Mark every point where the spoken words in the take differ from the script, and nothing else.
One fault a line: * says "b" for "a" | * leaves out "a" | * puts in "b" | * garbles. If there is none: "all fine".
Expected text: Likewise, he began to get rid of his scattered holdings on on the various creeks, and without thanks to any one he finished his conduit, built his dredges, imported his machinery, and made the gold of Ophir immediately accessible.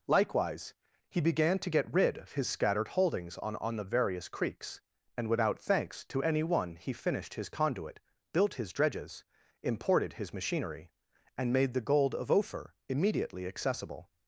all fine